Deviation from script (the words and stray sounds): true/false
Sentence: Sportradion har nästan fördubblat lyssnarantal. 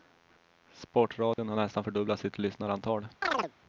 true